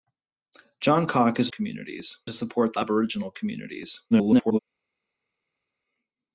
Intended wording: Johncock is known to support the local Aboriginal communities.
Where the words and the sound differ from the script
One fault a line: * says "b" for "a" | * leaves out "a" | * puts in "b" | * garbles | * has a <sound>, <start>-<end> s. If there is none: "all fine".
* says "communities" for "known"
* leaves out "local"
* garbles